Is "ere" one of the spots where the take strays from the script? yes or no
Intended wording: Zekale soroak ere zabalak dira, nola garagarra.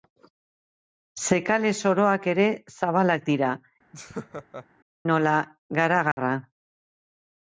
no